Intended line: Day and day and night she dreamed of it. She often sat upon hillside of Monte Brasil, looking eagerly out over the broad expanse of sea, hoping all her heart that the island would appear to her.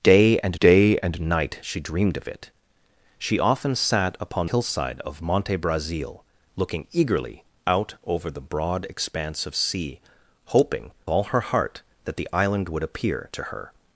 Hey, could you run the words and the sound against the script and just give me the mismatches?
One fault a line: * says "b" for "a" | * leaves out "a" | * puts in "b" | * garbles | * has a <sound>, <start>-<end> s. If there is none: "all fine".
all fine